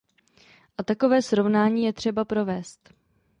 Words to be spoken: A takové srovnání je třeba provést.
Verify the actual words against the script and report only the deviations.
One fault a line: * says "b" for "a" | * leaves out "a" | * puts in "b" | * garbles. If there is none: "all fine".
all fine